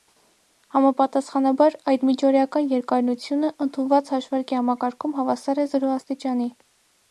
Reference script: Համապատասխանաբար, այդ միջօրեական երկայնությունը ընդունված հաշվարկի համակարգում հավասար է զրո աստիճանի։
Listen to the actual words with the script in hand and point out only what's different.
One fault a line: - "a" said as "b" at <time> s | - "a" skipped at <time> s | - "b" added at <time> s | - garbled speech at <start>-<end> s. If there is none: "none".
none